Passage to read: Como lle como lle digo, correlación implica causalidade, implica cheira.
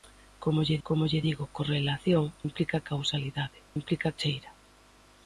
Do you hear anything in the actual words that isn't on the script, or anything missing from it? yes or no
no